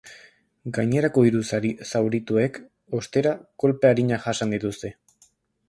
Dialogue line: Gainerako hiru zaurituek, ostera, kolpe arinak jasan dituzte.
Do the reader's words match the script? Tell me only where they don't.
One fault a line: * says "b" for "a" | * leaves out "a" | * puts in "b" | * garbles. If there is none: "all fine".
all fine